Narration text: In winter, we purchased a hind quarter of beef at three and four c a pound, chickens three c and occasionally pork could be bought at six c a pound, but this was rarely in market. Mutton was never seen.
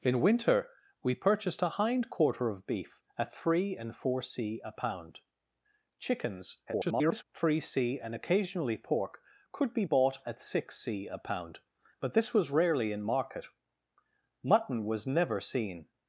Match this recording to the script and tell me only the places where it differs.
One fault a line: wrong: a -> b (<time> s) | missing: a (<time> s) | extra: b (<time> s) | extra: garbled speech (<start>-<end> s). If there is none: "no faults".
extra: garbled speech (6.7-7.2 s)